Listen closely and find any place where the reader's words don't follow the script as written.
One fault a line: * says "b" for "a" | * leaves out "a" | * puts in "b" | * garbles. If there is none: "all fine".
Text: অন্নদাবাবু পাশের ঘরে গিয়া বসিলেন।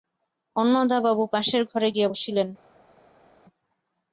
all fine